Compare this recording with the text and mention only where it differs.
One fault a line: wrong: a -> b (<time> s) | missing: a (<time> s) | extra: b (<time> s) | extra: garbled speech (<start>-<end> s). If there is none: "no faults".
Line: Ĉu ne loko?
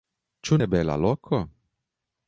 extra: bela (0.7 s)